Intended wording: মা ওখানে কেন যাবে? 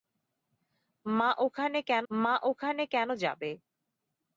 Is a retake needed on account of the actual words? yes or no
yes